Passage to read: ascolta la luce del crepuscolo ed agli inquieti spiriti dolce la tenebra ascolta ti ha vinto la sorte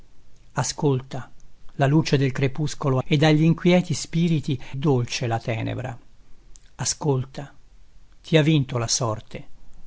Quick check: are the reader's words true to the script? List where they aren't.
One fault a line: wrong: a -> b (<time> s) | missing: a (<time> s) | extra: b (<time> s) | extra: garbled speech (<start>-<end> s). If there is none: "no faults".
no faults